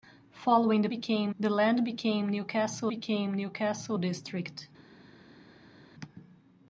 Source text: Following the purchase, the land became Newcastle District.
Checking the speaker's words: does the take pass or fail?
fail